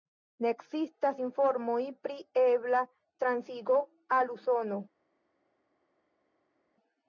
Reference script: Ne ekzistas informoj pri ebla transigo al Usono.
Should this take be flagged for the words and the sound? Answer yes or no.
no